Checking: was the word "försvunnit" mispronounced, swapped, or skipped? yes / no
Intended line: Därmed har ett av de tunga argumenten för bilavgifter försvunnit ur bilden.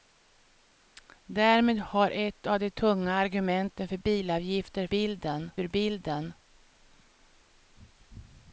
yes